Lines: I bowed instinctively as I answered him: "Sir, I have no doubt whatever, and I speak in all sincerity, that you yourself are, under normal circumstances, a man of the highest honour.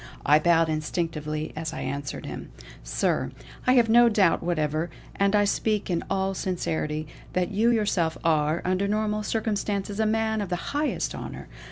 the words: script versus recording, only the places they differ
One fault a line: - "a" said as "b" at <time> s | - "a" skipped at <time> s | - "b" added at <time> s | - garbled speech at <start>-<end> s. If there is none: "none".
none